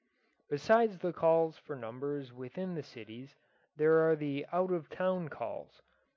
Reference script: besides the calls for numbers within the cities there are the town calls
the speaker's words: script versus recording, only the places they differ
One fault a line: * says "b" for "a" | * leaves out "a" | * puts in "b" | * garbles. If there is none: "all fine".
* puts in "out of"